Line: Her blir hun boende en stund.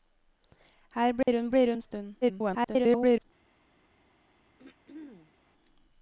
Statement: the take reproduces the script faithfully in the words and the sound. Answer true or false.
false